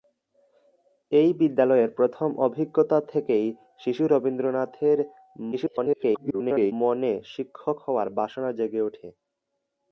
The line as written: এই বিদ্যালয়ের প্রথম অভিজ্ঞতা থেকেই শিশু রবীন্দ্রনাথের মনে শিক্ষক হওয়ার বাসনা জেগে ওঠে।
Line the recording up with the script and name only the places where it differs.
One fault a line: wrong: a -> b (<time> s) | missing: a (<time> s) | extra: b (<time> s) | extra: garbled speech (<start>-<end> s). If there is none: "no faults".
extra: garbled speech (5.5-6.7 s)